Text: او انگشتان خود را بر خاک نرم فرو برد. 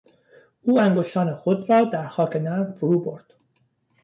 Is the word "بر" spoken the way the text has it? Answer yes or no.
no